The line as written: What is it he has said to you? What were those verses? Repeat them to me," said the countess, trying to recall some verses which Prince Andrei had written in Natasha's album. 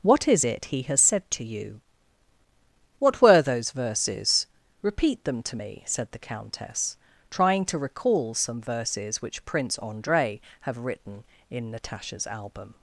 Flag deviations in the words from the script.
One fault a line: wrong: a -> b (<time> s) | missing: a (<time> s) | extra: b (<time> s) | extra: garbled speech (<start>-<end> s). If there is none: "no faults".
wrong: had -> have (10.6 s)